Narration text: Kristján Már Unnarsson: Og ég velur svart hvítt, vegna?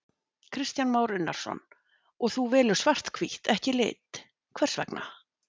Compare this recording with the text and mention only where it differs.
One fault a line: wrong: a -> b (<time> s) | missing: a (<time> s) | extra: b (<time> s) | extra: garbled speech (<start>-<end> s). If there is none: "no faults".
wrong: ég -> þú (2.4 s)
extra: ekki lit hvers (3.6 s)